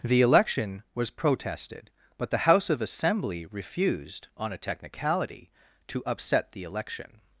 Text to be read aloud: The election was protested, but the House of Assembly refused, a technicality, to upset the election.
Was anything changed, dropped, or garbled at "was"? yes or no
no